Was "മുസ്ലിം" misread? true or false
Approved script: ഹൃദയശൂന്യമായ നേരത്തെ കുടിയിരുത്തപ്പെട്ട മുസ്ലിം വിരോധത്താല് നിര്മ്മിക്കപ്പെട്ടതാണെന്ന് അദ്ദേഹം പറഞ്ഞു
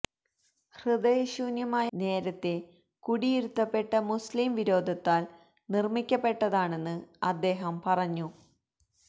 false